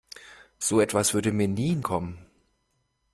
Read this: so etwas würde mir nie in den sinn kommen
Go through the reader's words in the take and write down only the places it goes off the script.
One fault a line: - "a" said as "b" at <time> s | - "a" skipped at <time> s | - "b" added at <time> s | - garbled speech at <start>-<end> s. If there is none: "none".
- "den sinn" skipped at 1.8 s